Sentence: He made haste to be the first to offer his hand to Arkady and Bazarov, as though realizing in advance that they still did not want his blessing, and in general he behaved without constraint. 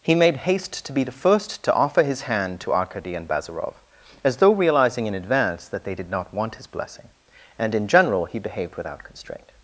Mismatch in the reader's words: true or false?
true